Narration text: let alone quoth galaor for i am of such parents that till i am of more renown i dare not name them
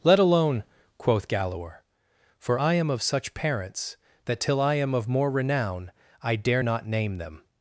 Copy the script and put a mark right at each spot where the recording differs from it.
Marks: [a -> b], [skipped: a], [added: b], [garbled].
let alone quoth galaor for i am of such parents that till i am of more renown i dare not name them